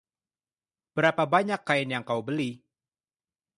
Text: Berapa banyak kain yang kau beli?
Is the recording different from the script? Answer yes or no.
no